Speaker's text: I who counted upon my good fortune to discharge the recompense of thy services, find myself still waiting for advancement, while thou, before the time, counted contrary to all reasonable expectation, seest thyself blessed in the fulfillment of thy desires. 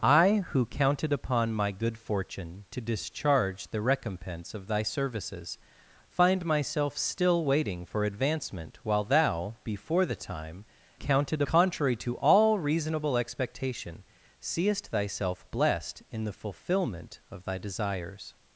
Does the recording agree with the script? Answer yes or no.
yes